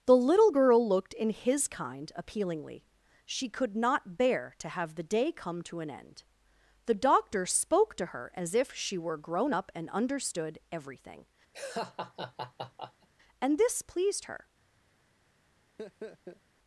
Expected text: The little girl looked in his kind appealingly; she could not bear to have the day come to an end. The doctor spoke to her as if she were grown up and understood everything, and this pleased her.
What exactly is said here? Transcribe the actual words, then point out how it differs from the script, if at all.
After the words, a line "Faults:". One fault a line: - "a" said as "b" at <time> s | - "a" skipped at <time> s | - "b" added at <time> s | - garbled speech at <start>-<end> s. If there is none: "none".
The little girl looked in his kind appealingly; she could not bear to have the day come to an end. The doctor spoke to her as if she were grown up and understood everything, and this pleased her.
Faults:
none